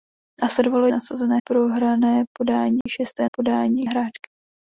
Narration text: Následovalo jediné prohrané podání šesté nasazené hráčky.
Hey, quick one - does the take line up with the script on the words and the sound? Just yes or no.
no